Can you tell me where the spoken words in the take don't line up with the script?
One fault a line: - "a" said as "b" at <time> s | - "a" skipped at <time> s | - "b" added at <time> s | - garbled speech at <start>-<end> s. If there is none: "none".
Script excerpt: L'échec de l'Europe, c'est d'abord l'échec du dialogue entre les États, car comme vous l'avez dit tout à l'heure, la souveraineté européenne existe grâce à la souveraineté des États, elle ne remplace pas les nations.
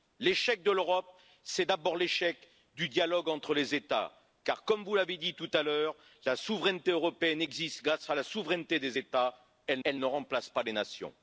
- "elle" added at 9.8 s